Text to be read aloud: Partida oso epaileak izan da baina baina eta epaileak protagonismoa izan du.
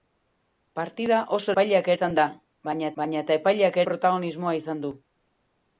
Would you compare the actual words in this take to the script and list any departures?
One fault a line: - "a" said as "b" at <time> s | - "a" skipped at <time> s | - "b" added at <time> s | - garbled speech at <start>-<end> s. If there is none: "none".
none